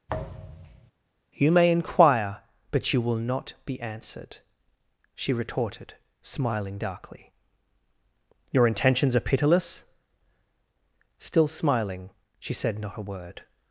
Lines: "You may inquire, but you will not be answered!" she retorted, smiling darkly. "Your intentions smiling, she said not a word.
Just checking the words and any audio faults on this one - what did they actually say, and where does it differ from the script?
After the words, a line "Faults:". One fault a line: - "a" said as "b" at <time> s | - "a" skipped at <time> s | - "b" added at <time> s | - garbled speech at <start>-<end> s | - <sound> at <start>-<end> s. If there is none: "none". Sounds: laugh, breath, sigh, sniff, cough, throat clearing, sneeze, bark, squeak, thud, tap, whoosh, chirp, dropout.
"You may inquire, but you will not be answered!" she retorted, smiling darkly. "Your intentions are pitiless?" Still smiling, she said not a word.
Faults:
- thud at 0.1-0.9 s
- "are pitiless Still" added at 9.1 s